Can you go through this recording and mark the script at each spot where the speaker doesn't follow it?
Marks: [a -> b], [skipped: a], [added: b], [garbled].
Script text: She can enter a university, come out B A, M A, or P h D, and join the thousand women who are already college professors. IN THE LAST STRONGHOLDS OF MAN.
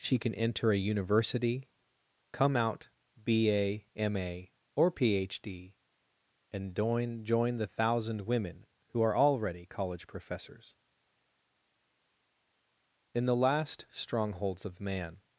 She can enter a university, come out B A, M A, or P h D, and join [added: join] the thousand women who are already college professors. IN THE LAST STRONGHOLDS OF MAN.